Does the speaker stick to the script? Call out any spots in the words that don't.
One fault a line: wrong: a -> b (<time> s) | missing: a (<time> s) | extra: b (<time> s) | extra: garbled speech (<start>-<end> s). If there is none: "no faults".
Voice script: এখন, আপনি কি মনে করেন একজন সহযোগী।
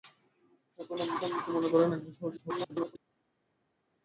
extra: আপনি (1.2 s)
extra: garbled speech (2.4-3.0 s)